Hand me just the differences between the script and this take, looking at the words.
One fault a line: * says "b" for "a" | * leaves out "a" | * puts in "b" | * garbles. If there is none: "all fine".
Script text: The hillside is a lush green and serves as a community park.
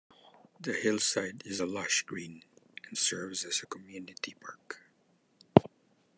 all fine